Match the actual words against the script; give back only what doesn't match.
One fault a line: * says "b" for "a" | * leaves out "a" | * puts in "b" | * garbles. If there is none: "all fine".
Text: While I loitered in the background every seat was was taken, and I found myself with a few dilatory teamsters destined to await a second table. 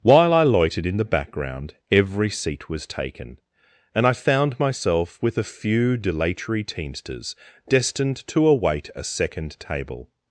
* leaves out "was"